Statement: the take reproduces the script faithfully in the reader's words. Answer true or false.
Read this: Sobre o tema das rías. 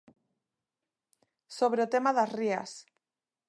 true